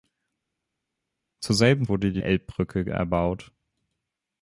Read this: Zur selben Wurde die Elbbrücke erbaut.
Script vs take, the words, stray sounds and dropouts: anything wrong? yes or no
no